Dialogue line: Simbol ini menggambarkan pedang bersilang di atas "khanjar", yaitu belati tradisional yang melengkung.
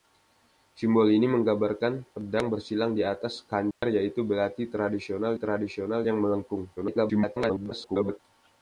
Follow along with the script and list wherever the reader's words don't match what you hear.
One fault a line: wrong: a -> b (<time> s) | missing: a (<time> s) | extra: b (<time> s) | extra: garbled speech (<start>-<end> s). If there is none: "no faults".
extra: tradisional (5.3 s)
extra: garbled speech (6.8-8.2 s)